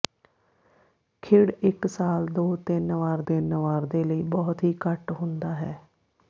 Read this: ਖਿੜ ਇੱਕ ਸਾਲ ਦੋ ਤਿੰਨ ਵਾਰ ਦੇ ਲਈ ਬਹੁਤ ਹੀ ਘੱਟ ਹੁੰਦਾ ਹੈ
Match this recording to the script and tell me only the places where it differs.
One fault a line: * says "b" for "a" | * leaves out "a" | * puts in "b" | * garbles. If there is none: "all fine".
* puts in "ਤਿੰਨ ਵਾਰ"